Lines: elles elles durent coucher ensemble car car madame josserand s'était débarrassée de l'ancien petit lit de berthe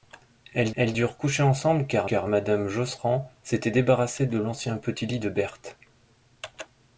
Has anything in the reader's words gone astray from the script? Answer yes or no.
no